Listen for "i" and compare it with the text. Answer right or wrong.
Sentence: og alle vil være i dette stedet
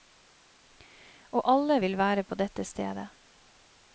wrong